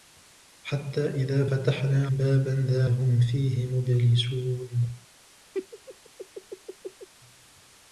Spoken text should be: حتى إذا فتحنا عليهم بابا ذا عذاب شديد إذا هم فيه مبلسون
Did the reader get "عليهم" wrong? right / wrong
wrong